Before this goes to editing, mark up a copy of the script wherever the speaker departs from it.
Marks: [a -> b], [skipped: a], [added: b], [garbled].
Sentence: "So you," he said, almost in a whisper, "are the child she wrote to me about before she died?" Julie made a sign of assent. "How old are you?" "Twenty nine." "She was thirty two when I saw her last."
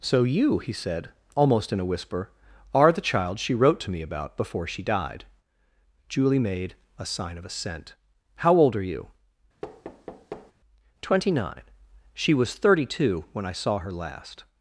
"So you," he said, almost in a whisper, "are the child she wrote to me about before she died?" Julie made a sign of assent. "How old are you?" "Twenty nine." "She was thirty two when I saw her last."